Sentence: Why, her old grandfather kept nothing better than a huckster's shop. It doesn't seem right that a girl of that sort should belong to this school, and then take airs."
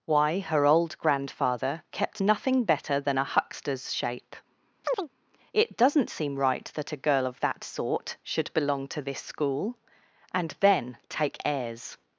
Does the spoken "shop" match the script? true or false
false